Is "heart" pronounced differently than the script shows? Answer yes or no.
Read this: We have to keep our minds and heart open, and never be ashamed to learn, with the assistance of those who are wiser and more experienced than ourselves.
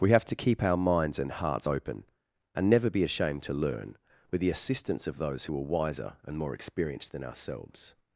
yes